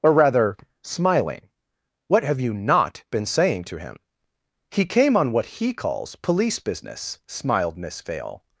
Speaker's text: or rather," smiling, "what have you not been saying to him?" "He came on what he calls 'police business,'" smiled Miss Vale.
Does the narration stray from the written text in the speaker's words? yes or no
no